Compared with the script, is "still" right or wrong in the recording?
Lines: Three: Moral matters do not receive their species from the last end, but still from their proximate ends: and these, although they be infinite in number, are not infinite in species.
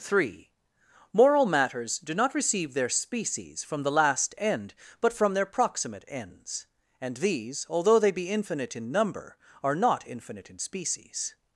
wrong